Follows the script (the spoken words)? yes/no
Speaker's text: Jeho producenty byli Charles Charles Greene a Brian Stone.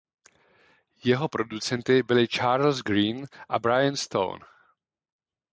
no